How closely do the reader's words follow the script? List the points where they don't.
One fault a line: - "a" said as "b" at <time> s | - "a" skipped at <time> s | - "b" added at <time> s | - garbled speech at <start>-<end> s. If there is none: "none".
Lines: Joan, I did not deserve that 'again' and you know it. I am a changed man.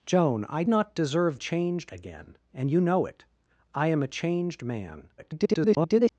- "did" skipped at 0.6 s
- "that" said as "changed" at 1.3 s
- garbled speech at 5.2-6.1 s